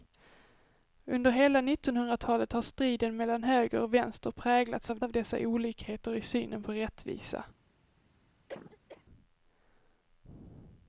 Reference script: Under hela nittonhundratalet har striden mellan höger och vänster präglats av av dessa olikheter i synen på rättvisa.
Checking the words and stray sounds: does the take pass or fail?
fail